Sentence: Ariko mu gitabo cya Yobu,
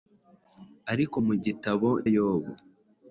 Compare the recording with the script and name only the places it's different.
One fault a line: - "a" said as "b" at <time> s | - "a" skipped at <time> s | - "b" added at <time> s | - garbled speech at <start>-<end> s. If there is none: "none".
- "cya" skipped at 1.9 s